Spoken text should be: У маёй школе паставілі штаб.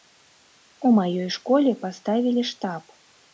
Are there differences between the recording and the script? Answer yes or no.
no